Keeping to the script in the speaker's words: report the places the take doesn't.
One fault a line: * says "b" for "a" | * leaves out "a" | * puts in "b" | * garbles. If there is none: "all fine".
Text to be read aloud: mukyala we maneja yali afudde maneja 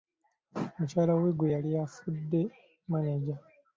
* says "gwe" for "maneja"